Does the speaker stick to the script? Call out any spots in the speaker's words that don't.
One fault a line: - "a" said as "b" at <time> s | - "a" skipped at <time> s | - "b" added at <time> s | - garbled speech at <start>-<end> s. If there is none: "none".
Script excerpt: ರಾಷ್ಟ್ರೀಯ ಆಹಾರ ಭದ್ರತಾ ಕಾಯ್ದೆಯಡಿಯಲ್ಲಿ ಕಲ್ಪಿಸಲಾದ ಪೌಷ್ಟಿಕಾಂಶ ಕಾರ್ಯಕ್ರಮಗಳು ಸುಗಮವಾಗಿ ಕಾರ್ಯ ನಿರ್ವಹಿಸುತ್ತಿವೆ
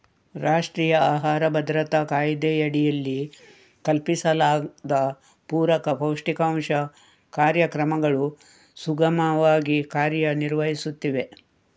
- "ಪೂರಕ" added at 5.5 s